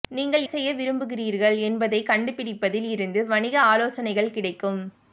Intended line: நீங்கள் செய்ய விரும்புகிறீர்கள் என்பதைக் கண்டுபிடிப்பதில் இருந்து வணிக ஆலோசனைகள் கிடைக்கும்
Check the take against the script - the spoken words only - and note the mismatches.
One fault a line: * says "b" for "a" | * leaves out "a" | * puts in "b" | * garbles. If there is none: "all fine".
all fine